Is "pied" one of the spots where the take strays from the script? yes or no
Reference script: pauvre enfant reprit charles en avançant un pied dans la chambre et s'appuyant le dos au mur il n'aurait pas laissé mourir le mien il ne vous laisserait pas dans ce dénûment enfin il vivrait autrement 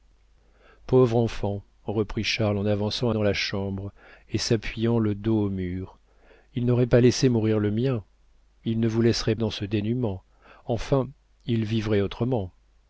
yes